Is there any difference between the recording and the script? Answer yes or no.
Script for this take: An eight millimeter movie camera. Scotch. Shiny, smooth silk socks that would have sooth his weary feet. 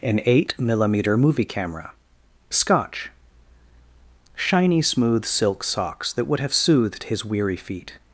yes